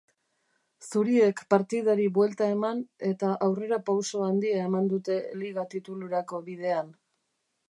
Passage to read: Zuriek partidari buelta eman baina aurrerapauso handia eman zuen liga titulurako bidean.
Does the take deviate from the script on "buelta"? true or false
false